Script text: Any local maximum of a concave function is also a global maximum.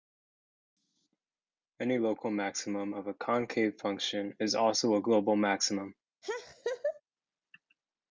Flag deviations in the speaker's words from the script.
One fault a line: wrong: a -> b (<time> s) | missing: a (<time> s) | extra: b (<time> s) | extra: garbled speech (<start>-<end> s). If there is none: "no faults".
no faults